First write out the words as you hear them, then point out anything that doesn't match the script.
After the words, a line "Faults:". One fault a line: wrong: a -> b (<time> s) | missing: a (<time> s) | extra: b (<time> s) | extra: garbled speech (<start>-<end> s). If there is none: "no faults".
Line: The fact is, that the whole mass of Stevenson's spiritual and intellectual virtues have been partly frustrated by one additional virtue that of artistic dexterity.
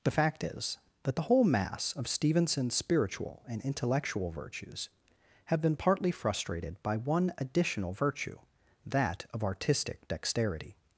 The fact is, that the whole mass of Stevenson's spiritual and intellectual virtues have been partly frustrated by one additional virtue that of artistic dexterity.
Faults:
no faults